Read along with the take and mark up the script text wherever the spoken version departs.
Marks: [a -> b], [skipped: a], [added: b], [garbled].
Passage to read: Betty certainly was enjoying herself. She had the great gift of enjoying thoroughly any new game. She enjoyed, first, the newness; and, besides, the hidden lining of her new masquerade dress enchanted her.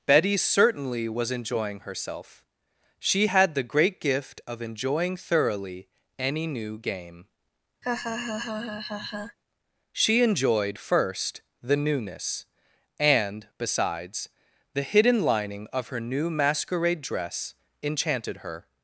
Betty certainly was enjoying herself. She had the great gift of enjoying thoroughly any new game. She enjoyed, first, the newness; and, besides, the hidden lining of her new masquerade dress enchanted her.